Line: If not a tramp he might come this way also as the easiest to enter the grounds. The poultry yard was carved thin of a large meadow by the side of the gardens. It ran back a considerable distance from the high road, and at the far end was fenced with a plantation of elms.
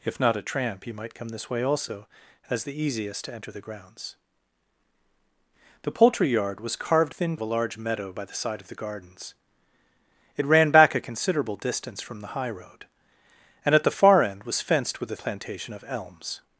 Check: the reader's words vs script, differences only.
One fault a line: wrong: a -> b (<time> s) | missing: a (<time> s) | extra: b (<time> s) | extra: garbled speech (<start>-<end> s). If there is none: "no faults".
no faults